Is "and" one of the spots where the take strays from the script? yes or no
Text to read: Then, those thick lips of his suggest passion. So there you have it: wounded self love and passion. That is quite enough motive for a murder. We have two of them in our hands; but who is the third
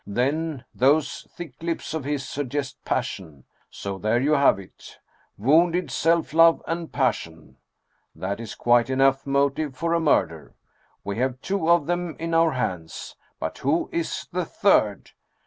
no